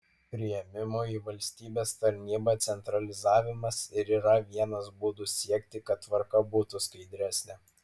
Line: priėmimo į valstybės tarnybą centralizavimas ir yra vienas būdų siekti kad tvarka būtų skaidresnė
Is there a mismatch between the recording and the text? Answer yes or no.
no